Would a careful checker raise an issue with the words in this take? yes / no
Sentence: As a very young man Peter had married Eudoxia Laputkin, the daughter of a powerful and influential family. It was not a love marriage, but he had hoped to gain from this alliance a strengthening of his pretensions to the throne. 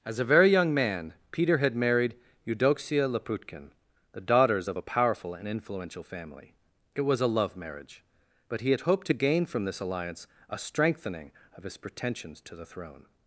yes